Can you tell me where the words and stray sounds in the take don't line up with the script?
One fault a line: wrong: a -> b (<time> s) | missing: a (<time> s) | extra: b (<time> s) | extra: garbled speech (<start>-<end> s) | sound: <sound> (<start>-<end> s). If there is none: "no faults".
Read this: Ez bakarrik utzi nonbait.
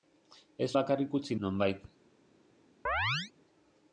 sound: chirp (2.9-3.3 s)